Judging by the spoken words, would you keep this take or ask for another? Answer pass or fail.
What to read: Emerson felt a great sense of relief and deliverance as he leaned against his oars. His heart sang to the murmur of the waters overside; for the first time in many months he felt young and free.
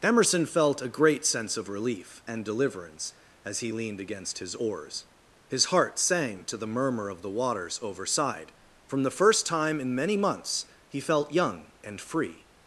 fail